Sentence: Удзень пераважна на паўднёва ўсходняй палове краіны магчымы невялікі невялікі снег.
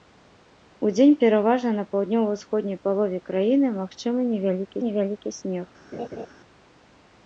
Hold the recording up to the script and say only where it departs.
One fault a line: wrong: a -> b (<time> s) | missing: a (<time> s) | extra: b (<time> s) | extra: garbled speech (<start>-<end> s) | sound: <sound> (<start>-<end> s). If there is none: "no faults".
sound: laugh (5.9-6.3 s)